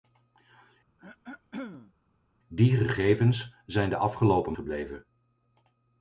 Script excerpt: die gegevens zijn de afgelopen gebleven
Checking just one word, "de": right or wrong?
right